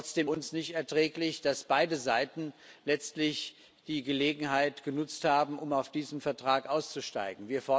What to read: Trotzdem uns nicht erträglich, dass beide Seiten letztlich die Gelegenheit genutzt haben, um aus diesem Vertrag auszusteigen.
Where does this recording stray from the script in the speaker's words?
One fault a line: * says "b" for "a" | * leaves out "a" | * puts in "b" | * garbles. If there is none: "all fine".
all fine